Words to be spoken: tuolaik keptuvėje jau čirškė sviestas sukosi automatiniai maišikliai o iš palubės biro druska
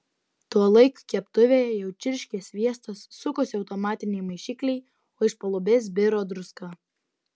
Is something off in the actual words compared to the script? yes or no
no